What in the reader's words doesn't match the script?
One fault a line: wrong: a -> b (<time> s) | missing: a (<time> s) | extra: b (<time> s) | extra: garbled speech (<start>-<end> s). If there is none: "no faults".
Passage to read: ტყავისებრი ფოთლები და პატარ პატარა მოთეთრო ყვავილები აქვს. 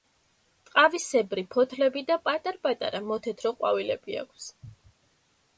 no faults